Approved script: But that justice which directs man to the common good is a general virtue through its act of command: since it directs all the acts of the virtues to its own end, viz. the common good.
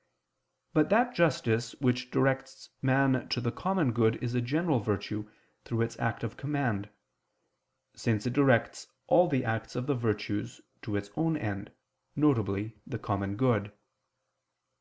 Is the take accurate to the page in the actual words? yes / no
yes